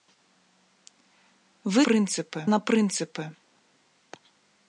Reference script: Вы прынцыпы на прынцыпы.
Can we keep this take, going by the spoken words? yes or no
yes